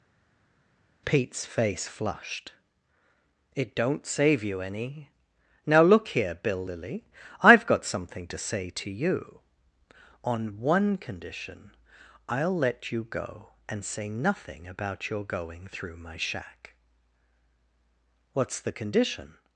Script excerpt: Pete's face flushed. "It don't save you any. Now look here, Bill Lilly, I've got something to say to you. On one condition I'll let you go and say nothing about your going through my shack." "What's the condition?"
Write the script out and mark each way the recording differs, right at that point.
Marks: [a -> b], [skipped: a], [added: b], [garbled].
Pete's face flushed. "It don't save you any. Now look here, Bill Lilly, I've got something to say to you. On one condition I'll let you go and say nothing about your going through my shack." "What's the condition?"